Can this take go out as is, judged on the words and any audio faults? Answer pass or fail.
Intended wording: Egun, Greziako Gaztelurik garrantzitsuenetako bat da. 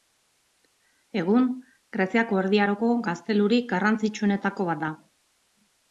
fail